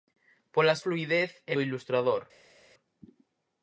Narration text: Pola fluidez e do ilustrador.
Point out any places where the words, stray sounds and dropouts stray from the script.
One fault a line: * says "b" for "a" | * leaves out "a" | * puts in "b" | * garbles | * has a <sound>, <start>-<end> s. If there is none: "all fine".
all fine